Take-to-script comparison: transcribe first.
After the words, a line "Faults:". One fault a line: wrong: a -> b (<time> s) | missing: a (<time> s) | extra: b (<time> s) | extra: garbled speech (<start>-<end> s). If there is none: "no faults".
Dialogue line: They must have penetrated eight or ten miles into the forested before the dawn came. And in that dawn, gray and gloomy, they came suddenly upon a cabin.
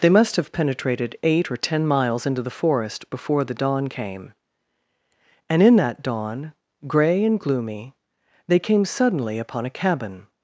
They must have penetrated eight or ten miles into the forest before the dawn came. And in that dawn, gray and gloomy, they came suddenly upon a cabin.
Faults:
wrong: forested -> forest (2.6 s)